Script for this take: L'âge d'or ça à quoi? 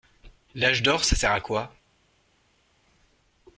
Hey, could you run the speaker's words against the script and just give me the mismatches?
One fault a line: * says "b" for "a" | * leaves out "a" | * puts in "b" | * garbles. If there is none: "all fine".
* puts in "sert"